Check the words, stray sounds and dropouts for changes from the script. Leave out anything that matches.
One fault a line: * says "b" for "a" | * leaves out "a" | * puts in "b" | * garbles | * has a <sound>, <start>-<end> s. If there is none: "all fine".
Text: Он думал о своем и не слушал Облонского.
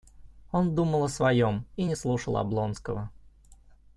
all fine